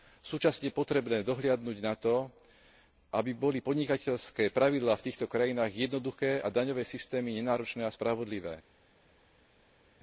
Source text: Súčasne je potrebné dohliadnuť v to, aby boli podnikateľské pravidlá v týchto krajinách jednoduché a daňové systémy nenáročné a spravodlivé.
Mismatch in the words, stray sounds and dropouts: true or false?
true